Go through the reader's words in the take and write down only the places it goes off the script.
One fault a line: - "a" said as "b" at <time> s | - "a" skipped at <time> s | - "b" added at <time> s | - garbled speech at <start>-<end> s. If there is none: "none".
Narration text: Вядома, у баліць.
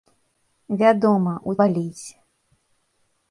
none